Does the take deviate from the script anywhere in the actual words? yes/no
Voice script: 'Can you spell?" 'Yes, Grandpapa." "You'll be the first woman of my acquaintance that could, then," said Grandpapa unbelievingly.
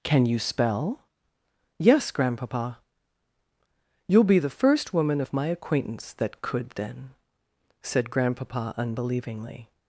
no